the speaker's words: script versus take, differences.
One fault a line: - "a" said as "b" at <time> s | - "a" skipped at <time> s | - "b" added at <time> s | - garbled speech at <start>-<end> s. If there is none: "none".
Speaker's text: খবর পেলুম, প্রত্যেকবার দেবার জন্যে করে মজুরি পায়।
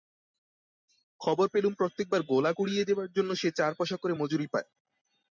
- "গোলা কুড়িয়ে" added at 2.2 s
- "সে চার পয়সা" added at 3.3 s